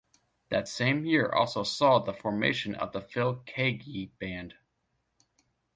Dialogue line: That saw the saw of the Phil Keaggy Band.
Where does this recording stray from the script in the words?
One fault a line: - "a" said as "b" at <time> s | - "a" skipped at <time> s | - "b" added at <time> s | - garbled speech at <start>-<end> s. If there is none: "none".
- "same year also" added at 0.6 s
- "saw" said as "formation" at 2.1 s